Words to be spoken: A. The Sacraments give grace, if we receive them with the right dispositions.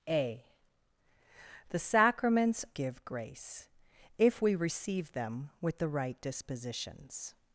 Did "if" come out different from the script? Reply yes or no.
no